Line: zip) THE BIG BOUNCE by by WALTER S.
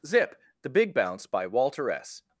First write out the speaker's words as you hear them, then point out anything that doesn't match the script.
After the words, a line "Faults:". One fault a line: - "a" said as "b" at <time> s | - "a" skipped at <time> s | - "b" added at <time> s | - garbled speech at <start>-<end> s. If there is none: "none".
zip) THE BIG BOUNCE by WALTER S.
Faults:
- "by" skipped at 1.4 s